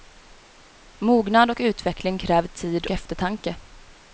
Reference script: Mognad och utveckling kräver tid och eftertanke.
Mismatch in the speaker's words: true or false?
true